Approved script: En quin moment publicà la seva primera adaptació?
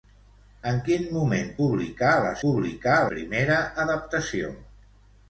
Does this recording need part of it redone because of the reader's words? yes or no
yes